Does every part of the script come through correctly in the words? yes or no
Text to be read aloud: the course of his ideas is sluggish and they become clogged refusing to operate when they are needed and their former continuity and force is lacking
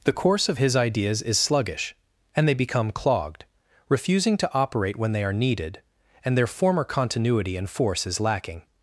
yes